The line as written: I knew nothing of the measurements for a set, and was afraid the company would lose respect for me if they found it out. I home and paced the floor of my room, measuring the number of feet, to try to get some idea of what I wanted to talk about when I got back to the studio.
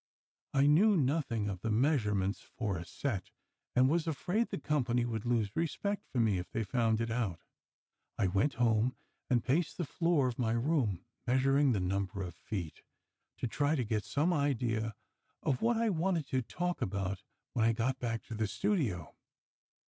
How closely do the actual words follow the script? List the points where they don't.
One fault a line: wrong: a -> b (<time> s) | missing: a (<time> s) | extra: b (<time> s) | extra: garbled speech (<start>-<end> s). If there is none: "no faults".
extra: went (8.2 s)